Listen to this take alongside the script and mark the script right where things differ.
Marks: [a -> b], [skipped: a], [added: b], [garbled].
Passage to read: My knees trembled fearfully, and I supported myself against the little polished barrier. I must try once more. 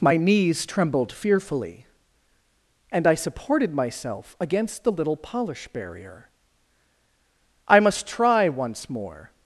My knees trembled fearfully, and I supported myself against the little [polished -> polish] barrier. I must try once more.